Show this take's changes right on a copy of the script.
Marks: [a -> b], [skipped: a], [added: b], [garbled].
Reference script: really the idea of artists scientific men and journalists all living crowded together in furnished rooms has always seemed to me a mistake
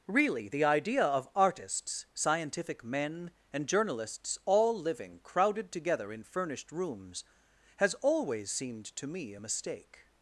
really the idea of artists scientific men and journalists all living crowded together in furnished rooms has always seemed to me a mistake